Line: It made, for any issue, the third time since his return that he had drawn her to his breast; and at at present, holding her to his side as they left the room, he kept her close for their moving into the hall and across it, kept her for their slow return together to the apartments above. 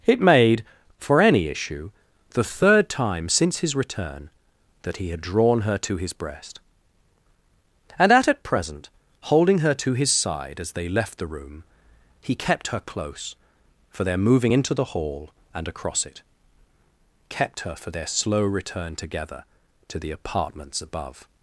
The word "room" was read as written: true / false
true